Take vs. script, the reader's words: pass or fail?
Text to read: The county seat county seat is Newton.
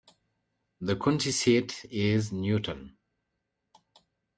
fail